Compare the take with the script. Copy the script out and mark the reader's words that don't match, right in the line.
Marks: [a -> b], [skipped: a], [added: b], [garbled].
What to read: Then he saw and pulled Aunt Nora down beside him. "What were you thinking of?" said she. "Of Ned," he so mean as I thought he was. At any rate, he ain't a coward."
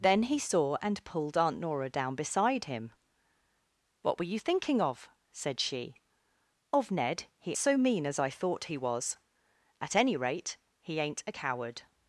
Then he saw and pulled Aunt Nora down beside him. "What were you thinking of?" said she. "Of Ned," he so mean as I thought he was. At any rate, he ain't a coward."